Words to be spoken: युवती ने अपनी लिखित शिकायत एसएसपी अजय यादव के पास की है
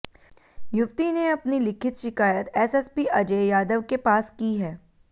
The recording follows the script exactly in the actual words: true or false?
true